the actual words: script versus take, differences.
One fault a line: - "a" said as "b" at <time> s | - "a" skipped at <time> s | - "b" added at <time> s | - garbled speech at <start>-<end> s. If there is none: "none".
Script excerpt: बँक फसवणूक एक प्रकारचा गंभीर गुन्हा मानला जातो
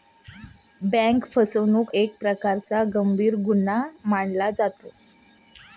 none